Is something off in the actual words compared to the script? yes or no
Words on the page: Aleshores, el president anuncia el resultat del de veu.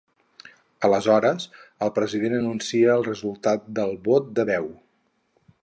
yes